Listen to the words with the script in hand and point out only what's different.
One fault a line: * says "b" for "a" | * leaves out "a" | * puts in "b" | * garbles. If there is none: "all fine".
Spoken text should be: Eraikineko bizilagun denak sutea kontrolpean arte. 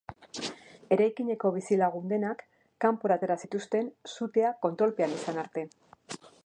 * puts in "kanpora atera zituzten"
* puts in "izan"